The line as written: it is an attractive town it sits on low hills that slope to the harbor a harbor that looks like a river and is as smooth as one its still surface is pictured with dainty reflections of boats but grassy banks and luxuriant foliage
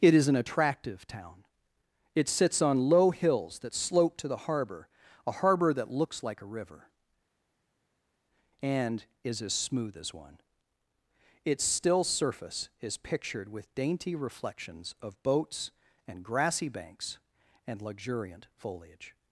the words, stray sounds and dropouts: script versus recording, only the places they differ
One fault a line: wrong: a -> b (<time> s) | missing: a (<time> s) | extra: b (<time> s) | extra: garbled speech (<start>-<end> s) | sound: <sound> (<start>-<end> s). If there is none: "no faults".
wrong: but -> and (16.1 s)